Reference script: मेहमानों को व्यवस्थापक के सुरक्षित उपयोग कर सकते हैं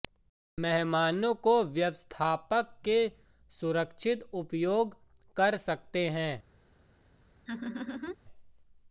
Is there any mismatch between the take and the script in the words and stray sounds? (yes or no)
yes